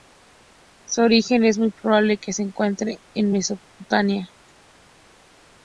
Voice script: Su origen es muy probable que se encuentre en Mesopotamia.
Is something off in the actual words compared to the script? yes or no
no